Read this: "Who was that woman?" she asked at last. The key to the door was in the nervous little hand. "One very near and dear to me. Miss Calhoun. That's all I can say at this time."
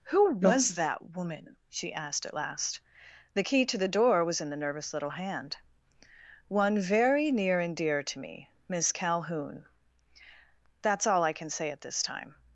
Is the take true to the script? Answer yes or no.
yes